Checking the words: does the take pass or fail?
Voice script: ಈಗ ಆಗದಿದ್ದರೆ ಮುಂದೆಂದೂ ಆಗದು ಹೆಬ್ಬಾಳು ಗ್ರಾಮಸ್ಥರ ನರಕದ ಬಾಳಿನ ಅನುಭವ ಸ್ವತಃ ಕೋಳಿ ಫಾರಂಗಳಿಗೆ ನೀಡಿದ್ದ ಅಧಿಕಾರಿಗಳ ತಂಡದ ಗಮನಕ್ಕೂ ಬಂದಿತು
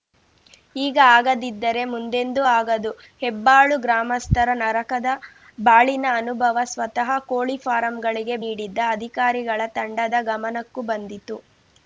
pass